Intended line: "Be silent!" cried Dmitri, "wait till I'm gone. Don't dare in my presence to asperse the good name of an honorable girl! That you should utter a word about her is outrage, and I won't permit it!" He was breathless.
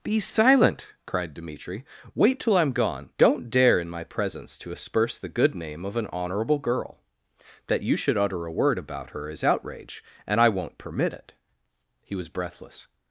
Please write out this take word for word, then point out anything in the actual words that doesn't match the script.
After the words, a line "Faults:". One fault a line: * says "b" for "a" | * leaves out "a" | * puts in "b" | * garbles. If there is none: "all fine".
"Be silent!" cried Dmitri, "wait till I'm gone. Don't dare in my presence to asperse the good name of an honorable girl! That you should utter a word about her is outrage, and I won't permit it!" He was breathless.
Faults:
all fine